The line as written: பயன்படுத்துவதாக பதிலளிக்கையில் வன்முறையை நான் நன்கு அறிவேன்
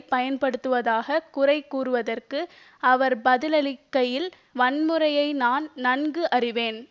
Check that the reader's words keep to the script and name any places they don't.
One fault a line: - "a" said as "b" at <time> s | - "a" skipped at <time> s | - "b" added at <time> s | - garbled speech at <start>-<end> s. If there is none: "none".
- "குறை கூறியதற்கு அவர்" added at 1.3 s